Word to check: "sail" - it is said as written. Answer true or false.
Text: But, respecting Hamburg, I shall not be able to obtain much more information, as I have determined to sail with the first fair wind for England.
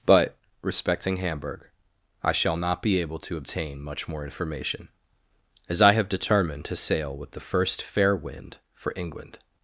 true